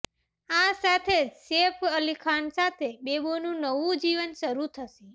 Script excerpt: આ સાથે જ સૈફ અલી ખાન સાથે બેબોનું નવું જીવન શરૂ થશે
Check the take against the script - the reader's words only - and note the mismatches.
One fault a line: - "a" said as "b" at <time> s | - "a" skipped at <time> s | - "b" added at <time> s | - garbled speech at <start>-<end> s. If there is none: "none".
none